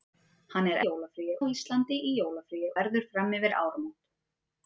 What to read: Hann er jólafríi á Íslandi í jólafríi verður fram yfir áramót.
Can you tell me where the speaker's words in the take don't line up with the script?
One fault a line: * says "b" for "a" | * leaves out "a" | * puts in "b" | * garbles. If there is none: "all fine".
all fine